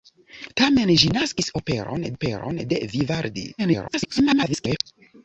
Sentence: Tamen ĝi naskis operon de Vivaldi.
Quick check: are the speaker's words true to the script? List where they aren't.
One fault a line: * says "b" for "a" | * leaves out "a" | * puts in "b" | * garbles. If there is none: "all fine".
* puts in "operon"
* garbles